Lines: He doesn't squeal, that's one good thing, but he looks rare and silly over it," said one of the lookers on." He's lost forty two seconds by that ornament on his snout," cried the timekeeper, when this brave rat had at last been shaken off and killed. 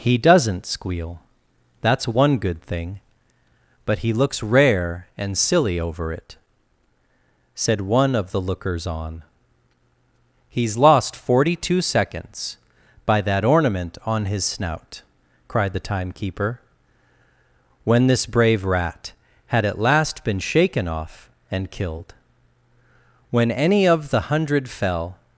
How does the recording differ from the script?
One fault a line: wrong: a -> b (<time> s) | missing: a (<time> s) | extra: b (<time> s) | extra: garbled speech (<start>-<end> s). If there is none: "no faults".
extra: When any of the hundred fell (23.3 s)